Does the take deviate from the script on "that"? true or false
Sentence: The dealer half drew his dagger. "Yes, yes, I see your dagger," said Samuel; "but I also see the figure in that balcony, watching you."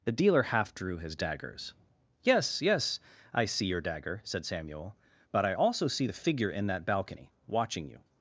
false